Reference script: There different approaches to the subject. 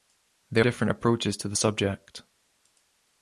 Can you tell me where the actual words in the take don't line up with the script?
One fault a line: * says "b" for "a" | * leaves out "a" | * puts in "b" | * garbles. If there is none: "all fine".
all fine